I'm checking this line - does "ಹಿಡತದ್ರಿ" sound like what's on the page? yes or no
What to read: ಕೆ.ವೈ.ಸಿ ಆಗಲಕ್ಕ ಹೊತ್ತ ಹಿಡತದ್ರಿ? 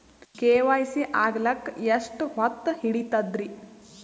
yes